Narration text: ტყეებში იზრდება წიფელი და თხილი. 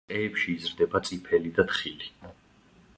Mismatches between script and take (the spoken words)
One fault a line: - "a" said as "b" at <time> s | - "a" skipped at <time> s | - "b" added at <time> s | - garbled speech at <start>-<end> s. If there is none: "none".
none